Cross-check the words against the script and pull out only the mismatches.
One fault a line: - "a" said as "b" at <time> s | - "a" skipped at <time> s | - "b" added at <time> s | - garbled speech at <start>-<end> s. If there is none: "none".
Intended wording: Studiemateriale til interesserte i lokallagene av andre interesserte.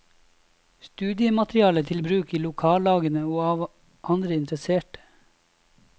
- "interesserte" said as "bruk" at 2.1 s
- "og" added at 3.3 s